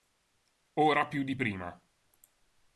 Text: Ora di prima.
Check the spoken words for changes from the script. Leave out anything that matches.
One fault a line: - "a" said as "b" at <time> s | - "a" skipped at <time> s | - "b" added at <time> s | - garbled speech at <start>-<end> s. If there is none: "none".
- "più" added at 1.1 s